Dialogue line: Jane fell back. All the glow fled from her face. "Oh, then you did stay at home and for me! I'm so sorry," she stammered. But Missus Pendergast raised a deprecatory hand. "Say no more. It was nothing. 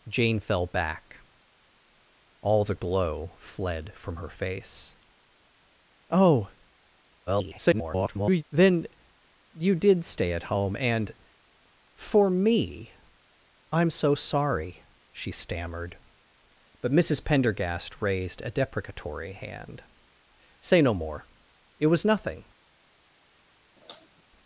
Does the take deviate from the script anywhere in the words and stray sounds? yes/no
yes